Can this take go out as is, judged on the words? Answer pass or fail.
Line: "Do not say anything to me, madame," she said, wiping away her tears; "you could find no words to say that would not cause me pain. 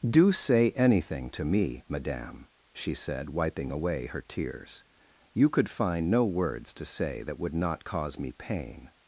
fail